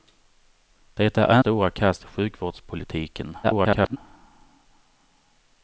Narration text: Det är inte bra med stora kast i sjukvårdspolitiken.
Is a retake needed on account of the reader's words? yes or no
yes